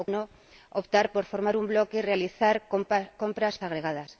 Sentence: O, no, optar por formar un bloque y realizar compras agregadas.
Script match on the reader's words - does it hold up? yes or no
yes